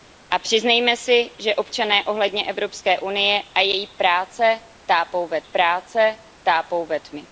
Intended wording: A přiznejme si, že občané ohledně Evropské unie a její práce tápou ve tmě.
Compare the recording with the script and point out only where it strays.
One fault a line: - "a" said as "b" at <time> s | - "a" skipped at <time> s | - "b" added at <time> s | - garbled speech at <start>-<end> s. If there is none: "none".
- "práce tápou ve" added at 5.4 s